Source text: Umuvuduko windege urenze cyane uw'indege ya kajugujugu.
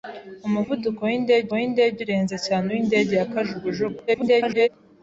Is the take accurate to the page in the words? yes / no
no